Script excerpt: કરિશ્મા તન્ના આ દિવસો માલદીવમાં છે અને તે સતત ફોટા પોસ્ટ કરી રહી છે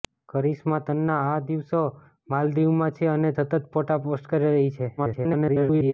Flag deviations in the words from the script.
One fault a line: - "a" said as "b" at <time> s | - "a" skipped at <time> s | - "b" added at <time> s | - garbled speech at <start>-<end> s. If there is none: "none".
- "તે" skipped at 3.3 s
- garbled speech at 5.0-5.9 s